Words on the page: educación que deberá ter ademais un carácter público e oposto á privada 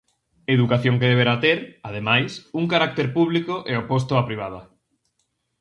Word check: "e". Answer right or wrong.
right